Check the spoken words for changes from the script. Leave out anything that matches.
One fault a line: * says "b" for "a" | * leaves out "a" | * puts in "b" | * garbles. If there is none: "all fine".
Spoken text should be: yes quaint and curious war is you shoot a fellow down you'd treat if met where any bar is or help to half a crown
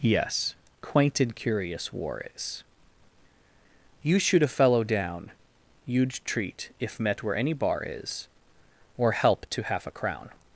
all fine